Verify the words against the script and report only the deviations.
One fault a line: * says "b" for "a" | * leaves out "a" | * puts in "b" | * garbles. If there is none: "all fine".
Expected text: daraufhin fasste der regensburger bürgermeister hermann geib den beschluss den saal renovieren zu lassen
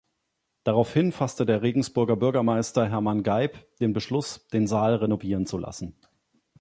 all fine